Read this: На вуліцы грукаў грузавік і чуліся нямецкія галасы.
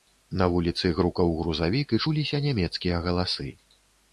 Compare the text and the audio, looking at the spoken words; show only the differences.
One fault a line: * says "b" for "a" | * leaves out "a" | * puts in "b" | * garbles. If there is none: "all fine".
all fine